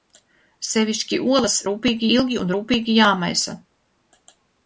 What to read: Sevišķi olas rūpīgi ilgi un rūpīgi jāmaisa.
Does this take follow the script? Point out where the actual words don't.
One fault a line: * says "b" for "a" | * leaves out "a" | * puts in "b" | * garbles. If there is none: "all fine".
all fine